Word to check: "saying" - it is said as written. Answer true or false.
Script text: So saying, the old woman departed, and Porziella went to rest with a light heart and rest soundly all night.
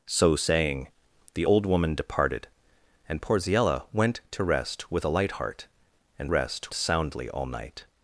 true